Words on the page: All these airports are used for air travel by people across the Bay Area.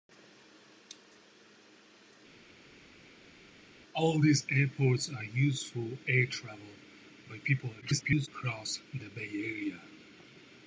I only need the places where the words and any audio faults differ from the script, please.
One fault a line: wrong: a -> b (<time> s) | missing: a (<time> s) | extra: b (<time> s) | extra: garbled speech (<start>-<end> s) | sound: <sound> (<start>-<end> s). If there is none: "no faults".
extra: garbled speech (7.8-8.3 s)